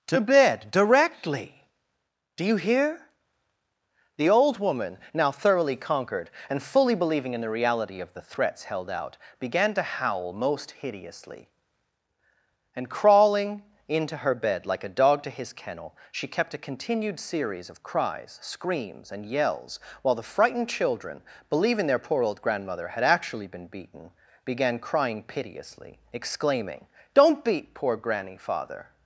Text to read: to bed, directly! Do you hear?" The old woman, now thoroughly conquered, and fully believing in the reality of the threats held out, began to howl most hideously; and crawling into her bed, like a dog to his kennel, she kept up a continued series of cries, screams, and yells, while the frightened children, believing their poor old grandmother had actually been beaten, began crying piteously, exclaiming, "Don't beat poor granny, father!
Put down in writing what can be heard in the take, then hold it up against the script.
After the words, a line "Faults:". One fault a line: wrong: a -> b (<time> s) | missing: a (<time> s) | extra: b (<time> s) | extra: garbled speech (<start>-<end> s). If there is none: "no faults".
to bed, directly! Do you hear?" The old woman, now thoroughly conquered, and fully believing in the reality of the threats held out, began to howl most hideously; and crawling into her bed, like a dog to his kennel, she kept a continued series of cries, screams, and yells, while the frightened children, believing their poor old grandmother had actually been beaten, began crying piteously, exclaiming, "Don't beat poor granny, father!
Faults:
missing: up (16.5 s)